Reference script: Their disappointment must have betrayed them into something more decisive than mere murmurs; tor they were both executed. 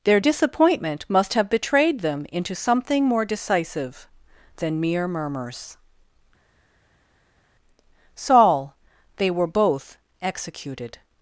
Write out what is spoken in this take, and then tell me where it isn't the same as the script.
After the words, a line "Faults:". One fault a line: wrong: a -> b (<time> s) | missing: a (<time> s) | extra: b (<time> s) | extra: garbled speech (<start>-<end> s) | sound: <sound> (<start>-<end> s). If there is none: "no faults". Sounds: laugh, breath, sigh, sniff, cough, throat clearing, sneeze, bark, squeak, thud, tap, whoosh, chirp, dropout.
Their disappointment must have betrayed them into something more decisive than mere murmurs; saul they were both executed.
Faults:
wrong: tor -> saul (8.2 s)